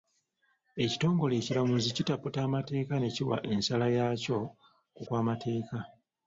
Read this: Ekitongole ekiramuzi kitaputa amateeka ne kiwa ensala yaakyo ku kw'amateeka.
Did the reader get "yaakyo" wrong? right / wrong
right